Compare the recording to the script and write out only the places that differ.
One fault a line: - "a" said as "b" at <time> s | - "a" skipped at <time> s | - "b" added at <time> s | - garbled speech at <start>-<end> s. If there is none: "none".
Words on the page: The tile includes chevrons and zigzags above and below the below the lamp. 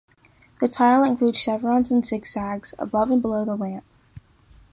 - "below the" skipped at 3.6 s